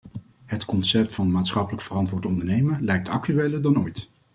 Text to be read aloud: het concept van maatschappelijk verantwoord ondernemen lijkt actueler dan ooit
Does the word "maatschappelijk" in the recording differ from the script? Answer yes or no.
no